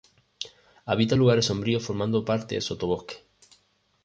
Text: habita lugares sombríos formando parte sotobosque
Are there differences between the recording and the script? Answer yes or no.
no